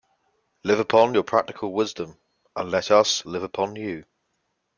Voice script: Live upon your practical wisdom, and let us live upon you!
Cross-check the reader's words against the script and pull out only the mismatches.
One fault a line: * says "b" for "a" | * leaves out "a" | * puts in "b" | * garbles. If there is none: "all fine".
all fine